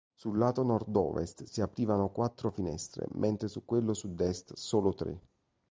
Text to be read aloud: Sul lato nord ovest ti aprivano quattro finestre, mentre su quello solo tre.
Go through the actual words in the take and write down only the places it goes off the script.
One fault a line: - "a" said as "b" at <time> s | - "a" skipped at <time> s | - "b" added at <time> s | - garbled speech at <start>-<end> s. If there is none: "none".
- "ti" said as "si" at 1.4 s
- "sud est" added at 3.9 s